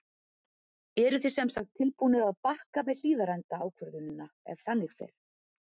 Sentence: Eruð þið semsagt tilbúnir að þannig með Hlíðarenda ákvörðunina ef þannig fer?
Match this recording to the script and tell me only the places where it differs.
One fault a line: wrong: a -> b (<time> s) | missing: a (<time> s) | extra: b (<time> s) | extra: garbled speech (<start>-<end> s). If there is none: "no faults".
wrong: þannig -> bakka (2.5 s)